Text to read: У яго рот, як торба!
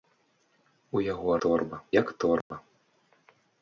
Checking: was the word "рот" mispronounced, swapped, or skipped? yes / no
yes